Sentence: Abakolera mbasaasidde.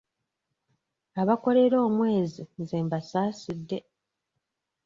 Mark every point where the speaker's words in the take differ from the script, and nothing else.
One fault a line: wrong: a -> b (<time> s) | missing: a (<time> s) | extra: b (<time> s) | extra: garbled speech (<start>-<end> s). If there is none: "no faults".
extra: omwezi nze (1.9 s)